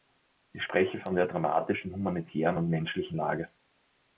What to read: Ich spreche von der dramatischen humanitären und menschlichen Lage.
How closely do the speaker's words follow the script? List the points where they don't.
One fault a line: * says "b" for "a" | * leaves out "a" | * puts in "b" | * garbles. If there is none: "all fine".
all fine